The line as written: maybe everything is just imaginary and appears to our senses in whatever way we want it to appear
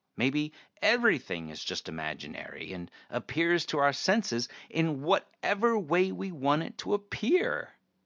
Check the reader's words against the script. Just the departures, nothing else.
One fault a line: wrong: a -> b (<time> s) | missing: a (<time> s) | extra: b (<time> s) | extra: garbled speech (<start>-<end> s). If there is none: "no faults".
no faults